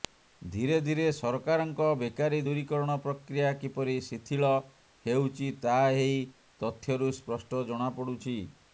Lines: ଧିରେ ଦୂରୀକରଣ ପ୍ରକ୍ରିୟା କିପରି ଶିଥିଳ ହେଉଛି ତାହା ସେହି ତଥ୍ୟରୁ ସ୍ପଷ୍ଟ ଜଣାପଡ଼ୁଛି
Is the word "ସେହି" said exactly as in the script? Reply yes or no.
no